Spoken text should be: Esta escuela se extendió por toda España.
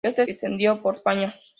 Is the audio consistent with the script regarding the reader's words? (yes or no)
no